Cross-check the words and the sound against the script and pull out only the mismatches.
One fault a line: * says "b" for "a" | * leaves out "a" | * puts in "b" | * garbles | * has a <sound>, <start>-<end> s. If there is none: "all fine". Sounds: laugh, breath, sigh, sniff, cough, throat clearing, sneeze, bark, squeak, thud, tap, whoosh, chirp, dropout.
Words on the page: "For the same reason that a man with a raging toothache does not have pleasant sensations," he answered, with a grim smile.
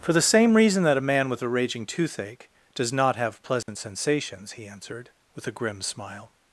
* has a dropout, 3.6-3.7 s